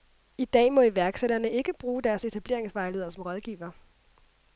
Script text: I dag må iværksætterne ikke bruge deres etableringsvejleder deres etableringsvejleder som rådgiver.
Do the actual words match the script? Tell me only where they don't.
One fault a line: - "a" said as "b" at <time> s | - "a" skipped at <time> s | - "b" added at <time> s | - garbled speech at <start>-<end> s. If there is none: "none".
- "deres etableringsvejleder" skipped at 3.1 s